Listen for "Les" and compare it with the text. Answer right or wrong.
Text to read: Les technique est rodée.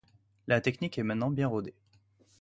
wrong